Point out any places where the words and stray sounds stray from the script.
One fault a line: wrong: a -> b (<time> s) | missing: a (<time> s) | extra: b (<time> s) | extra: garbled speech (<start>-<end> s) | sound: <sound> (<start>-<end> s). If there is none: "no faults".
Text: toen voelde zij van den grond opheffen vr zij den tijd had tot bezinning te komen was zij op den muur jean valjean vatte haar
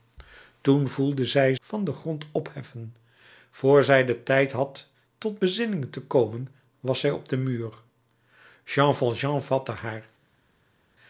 no faults